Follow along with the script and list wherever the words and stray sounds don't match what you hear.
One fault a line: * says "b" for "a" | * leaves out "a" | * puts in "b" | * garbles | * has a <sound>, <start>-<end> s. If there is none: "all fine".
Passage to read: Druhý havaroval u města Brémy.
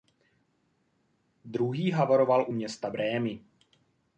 all fine